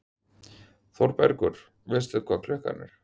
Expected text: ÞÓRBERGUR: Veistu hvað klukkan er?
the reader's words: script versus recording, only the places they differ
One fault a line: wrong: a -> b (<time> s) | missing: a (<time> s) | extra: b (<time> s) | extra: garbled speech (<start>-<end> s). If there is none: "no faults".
no faults